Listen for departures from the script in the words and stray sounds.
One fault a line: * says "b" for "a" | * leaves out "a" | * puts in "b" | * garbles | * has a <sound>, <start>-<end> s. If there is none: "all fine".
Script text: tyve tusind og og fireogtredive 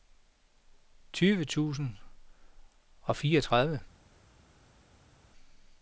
* leaves out "og"